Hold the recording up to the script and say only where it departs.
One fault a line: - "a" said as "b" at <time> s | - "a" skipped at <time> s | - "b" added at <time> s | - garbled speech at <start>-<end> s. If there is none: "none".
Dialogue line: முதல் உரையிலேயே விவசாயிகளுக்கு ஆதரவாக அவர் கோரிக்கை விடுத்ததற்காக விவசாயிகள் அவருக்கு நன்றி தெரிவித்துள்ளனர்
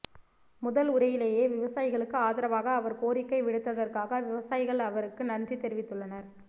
none